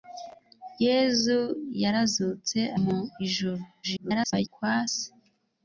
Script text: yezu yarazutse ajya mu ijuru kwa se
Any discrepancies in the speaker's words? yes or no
yes